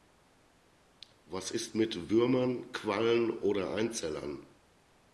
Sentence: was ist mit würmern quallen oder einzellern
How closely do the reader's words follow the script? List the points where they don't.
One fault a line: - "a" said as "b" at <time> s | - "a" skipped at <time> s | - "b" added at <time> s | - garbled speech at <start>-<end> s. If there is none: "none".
none